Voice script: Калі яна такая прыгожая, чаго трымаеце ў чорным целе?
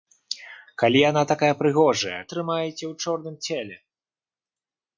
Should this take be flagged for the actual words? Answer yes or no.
yes